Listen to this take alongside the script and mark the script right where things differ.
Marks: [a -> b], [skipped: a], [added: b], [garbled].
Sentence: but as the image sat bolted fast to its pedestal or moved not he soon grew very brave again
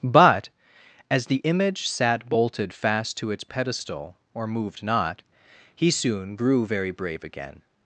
but as the image sat bolted fast to its pedestal or moved not he soon grew very brave again